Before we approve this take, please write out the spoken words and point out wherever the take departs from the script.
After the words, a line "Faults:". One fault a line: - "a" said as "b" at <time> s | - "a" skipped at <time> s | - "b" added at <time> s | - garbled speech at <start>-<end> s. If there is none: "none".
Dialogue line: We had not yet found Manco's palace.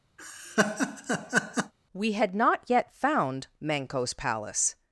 We had not yet found Manco's palace.
Faults:
none